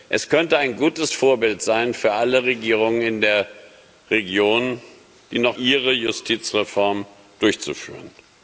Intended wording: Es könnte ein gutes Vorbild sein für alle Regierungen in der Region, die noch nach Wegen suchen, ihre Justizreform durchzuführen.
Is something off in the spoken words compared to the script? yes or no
yes